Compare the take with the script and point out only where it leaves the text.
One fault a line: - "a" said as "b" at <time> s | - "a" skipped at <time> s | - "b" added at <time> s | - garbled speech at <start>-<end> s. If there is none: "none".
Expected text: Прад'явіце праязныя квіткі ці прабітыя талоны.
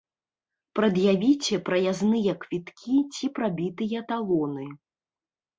none